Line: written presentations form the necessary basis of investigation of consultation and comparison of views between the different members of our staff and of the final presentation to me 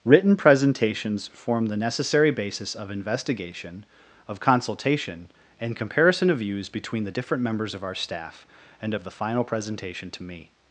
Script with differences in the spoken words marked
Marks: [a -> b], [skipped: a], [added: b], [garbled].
written presentations form the necessary basis of investigation of consultation and comparison of views between the different members of our staff and of the final presentation to me